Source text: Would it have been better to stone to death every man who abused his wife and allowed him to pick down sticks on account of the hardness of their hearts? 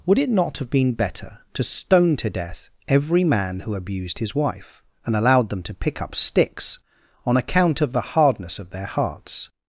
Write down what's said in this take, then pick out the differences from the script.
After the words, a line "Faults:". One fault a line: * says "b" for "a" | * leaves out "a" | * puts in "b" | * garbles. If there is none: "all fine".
Would it not have been better to stone to death every man who abused his wife and allowed them to pick up sticks on account of the hardness of their hearts?
Faults:
* puts in "not"
* says "them" for "him"
* says "up" for "down"